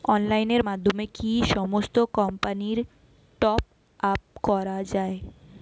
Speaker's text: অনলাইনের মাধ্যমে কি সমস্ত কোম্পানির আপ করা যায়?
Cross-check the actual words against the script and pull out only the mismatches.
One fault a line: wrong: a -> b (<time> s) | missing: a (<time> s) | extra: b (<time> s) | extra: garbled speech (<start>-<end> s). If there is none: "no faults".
extra: টপ (3.4 s)